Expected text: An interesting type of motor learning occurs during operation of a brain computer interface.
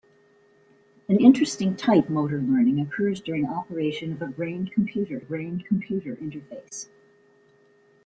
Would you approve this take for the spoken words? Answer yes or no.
no